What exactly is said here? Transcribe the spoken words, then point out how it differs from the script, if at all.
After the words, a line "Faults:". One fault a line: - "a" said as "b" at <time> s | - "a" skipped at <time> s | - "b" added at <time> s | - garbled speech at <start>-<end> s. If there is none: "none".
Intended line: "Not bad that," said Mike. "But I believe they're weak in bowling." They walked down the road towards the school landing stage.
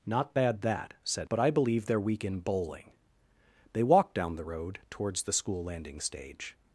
"Not bad that," said. "But I believe they're weak in bowling." They walked down the road towards the school landing stage.
Faults:
- "Mike" skipped at 1.3 s